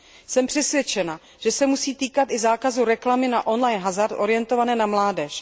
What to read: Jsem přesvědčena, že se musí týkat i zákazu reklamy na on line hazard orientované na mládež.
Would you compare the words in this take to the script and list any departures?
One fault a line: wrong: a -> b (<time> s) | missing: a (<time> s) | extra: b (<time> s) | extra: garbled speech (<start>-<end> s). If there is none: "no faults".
no faults